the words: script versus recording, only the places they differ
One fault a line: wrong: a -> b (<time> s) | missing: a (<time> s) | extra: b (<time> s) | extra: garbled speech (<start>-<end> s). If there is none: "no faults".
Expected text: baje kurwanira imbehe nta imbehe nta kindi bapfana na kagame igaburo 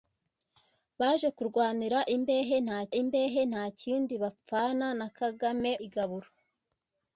no faults